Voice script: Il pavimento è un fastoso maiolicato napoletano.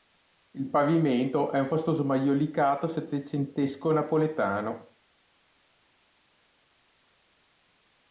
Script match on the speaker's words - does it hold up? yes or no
no